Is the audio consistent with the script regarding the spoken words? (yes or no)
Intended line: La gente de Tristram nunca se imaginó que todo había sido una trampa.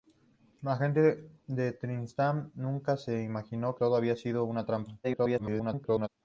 no